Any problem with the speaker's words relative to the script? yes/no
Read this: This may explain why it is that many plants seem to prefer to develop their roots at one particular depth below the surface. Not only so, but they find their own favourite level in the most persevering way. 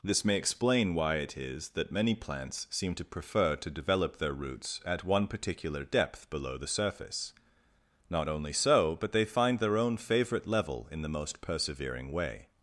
no